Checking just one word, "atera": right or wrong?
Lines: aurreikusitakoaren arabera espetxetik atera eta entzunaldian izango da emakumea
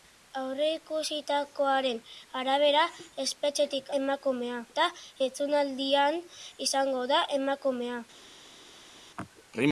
wrong